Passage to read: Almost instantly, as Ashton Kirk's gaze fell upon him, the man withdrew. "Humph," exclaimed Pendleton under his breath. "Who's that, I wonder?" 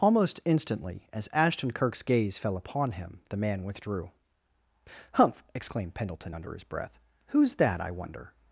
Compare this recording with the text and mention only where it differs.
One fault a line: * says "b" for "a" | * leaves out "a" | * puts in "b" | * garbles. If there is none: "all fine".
all fine